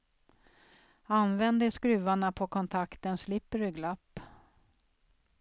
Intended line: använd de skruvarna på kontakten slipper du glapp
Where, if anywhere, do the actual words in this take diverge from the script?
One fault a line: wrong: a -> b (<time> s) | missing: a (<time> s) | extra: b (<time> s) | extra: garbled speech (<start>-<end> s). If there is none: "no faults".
no faults